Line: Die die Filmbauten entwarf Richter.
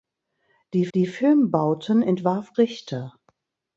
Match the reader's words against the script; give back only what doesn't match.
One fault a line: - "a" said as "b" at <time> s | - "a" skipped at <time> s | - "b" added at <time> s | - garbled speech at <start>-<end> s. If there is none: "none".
none